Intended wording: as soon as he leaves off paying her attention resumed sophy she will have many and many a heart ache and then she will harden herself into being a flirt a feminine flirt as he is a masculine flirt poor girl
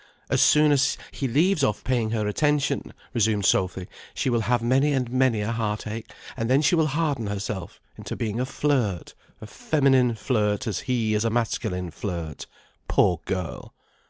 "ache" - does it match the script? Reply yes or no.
yes